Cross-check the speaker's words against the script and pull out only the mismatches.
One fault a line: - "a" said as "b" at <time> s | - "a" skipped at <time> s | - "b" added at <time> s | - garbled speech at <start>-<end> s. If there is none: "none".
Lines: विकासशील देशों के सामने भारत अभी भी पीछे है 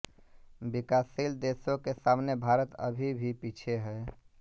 none